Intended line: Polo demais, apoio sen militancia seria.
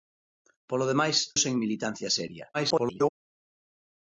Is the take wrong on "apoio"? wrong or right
wrong